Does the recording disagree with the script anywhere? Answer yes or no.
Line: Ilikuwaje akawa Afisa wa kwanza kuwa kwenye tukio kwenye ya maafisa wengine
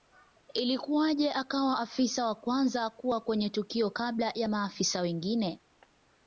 yes